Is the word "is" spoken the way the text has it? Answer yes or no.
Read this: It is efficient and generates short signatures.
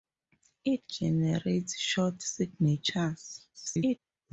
no